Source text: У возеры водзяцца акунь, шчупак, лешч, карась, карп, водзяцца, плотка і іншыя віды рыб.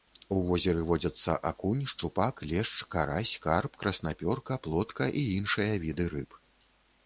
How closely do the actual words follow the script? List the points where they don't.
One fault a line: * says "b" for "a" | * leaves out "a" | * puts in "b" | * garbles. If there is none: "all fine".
* says "краснапёрка" for "водзяцца"